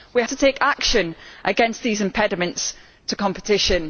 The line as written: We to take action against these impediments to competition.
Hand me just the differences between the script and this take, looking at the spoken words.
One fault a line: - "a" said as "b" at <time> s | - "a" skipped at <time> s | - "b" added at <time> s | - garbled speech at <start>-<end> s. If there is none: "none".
none